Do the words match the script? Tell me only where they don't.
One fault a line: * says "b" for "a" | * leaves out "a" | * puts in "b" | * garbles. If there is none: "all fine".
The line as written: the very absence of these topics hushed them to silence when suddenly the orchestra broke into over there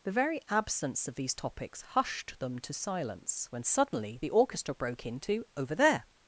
all fine